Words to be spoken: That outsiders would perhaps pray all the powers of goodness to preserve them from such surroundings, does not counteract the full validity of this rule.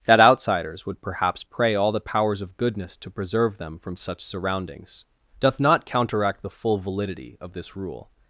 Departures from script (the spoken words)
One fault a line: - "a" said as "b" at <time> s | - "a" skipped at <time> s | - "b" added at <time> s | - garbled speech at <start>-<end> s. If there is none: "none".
- "does" said as "doth" at 5.4 s